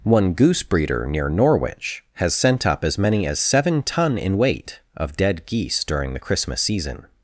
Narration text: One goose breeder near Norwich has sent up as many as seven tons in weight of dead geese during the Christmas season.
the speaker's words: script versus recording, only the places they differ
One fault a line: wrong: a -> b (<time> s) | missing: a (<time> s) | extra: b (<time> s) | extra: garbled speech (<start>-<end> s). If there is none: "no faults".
wrong: tons -> ton (3.8 s)